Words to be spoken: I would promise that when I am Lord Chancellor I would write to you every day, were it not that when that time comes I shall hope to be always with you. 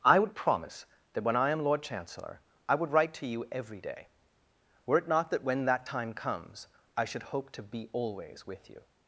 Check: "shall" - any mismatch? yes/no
yes